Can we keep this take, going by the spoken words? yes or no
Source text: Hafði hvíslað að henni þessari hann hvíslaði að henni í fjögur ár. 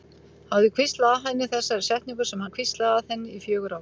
no